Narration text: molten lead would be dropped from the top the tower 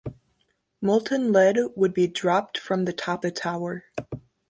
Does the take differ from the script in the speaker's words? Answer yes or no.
no